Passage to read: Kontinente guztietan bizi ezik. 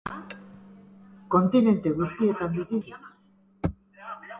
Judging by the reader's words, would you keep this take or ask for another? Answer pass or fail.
pass